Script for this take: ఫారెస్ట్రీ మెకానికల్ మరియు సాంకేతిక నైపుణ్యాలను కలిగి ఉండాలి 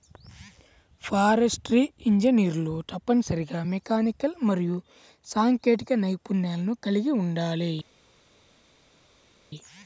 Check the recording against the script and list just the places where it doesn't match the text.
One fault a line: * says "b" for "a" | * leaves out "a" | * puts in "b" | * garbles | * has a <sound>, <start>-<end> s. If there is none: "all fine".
* puts in "ఇంజనీర్లు తప్పనిసరిగా"